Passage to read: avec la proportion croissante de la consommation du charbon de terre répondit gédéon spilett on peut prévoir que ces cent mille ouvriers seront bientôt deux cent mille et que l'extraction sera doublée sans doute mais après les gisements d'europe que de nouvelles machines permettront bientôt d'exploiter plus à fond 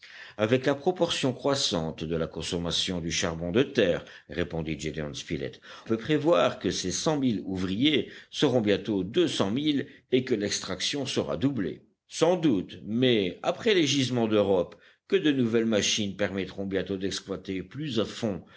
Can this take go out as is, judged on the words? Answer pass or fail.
fail